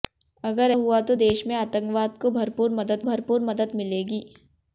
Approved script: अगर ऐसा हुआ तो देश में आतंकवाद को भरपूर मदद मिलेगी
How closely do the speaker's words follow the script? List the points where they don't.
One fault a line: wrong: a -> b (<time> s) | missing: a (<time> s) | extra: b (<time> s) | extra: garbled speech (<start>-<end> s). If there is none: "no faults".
missing: ऐसा (0.7 s)
extra: भरपूर मदद (3.0 s)